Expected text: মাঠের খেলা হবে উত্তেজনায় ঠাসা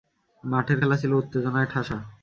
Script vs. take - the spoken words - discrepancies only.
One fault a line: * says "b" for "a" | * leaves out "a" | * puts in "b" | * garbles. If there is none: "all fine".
* says "ছিল" for "হবে"